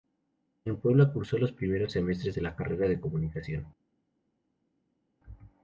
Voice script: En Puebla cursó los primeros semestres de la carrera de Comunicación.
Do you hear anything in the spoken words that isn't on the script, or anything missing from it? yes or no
no